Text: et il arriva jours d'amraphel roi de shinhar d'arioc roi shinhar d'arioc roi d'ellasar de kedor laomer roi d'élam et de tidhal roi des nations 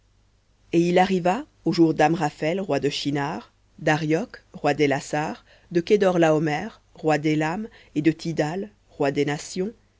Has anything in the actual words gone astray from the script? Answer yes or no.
yes